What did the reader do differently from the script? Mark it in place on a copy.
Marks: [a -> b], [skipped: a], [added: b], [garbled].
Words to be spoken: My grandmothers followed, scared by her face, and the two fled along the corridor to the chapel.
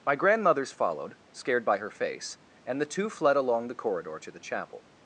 My grandmothers followed, scared by her face, and the two fled along the corridor to the chapel.